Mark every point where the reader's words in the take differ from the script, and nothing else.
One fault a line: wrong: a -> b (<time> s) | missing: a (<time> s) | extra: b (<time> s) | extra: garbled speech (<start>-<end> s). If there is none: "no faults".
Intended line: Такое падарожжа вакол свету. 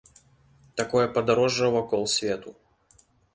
no faults